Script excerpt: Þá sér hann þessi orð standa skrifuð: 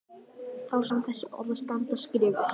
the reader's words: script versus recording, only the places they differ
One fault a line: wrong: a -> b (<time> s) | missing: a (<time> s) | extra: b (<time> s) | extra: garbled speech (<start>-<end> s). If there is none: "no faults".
missing: sér (0.8 s)